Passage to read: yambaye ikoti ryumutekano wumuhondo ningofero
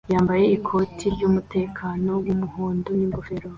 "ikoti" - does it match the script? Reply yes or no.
yes